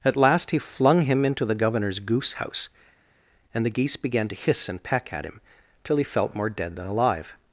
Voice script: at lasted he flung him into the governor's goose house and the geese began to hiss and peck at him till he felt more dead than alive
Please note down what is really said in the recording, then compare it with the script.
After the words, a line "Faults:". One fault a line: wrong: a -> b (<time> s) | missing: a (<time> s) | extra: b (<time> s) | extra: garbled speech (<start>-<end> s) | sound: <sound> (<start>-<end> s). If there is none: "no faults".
at last he flung him into the governor's goose house and the geese began to hiss and peck at him till he felt more dead than alive
Faults:
wrong: lasted -> last (0.2 s)